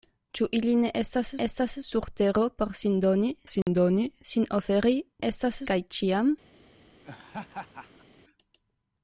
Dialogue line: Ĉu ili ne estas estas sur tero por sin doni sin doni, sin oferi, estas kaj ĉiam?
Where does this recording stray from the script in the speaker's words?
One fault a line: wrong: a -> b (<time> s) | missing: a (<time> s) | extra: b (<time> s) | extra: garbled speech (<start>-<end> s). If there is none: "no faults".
no faults